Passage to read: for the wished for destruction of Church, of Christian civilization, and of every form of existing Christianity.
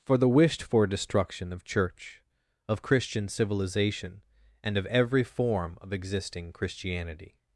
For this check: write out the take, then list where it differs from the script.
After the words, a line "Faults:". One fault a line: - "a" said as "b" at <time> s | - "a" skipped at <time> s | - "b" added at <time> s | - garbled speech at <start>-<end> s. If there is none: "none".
for the wished for destruction of Church, of Christian civilization, and of every form of existing Christianity.
Faults:
none